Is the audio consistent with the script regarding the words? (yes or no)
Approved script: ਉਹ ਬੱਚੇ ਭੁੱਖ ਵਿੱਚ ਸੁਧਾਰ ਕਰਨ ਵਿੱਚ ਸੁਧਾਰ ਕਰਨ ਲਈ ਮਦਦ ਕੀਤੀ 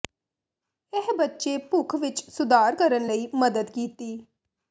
no